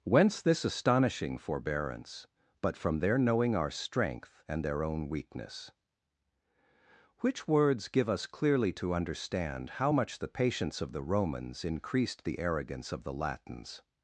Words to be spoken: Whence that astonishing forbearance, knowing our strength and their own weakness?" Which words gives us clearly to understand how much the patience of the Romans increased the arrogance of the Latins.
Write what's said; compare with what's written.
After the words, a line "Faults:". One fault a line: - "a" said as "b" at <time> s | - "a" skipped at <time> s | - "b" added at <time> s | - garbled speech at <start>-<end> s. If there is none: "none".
Whence this astonishing forbearance, but from their knowing our strength and their own weakness?" Which words give us clearly to understand how much the patience of the Romans increased the arrogance of the Latins.
Faults:
- "that" said as "this" at 0.4 s
- "but from their" added at 2.6 s
- "gives" said as "give" at 7.9 s